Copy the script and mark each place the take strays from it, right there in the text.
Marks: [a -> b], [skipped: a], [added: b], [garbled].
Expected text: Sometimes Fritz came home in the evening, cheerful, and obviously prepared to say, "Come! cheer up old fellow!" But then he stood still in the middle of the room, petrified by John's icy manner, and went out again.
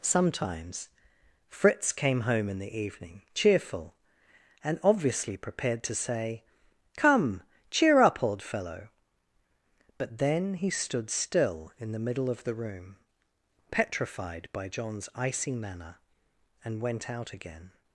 Sometimes Fritz came home in the evening, cheerful, and obviously prepared to say, "Come! cheer up old fellow!" But then he stood still in the middle of the room, petrified by John's icy manner, and went out again.